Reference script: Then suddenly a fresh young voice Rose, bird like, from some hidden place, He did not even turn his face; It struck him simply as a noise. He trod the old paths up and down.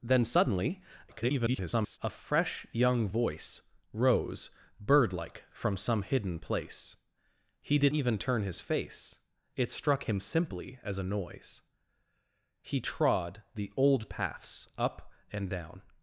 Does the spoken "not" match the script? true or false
false